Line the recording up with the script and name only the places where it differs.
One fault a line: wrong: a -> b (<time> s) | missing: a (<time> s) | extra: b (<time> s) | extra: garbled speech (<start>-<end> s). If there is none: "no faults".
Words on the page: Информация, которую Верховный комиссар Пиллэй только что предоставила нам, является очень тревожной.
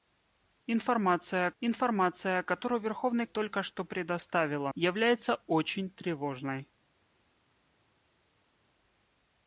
extra: информация (1.6 s)
missing: комиссар Пиллэй (3.2 s)
missing: нам (4.7 s)